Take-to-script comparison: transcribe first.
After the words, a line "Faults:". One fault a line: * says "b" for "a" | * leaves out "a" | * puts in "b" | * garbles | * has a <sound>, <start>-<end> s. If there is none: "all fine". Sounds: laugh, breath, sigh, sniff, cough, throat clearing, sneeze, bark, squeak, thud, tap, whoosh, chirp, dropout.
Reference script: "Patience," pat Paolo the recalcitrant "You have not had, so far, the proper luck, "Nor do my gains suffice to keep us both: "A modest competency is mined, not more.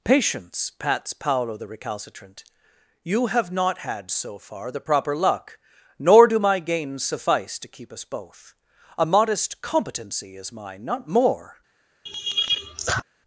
"Patience," pats Paolo the recalcitrant "You have not had, so far, the proper luck, "Nor do my gains suffice to keep us both: "A modest competency is mine, not more.
Faults:
* says "pats" for "pat"
* says "mine" for "mined"
* has a laugh, 12.1-13.0 s